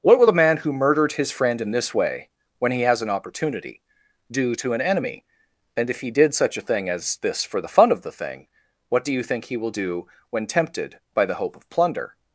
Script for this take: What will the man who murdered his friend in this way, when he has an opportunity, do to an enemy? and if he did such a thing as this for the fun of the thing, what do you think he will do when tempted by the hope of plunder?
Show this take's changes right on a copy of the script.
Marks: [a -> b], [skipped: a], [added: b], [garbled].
What will the man who murdered his friend in this way, when he has an opportunity, do to an enemy? and if he did such a thing as this for the fun of the thing, what do you think he will do when tempted by the hope of plunder?